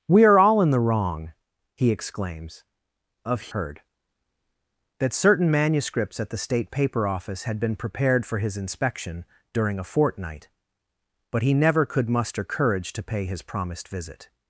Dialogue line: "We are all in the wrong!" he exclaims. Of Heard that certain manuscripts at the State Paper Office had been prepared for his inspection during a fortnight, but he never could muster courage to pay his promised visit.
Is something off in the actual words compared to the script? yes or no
no